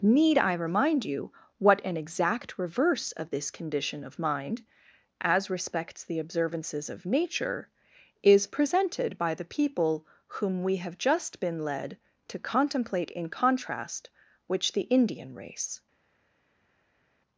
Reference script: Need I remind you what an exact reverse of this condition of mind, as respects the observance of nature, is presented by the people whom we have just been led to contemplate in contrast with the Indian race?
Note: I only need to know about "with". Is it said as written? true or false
false